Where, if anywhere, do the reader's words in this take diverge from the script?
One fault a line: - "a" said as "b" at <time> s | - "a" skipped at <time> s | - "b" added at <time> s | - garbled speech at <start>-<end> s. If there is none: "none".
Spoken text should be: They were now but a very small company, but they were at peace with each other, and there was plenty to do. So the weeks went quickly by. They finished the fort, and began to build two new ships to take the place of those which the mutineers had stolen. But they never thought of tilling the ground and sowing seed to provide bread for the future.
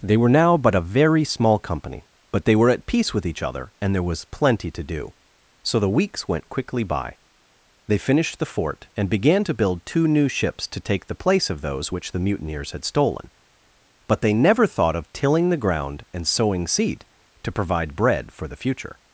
none